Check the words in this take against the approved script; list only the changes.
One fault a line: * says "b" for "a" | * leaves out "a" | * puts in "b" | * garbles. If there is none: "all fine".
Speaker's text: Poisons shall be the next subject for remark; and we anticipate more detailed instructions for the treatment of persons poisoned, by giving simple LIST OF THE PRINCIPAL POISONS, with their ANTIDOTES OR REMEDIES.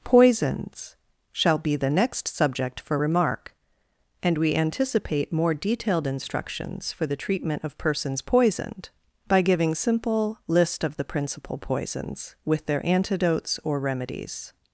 all fine